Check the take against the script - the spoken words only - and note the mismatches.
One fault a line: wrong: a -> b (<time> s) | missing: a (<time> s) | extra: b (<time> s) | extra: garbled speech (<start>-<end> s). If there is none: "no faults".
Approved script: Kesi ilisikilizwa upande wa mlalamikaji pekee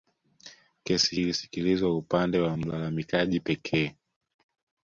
no faults